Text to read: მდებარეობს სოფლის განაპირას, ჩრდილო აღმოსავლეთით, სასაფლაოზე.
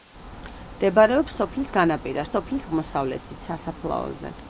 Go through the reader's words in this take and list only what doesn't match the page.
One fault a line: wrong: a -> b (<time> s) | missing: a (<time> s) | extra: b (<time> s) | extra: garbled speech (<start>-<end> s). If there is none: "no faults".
wrong: ჩრდილო -> სოფლის (2.4 s)